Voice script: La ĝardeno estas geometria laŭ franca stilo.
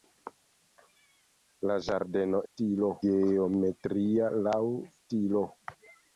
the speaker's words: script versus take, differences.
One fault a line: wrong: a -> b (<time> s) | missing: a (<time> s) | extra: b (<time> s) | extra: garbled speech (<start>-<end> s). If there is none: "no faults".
wrong: estas -> stilo (2.5 s)
missing: franca (4.6 s)